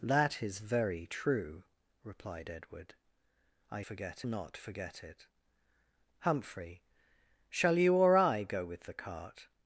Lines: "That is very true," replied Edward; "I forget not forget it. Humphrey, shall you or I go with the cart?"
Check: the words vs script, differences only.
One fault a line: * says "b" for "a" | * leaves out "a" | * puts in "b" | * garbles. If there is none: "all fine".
all fine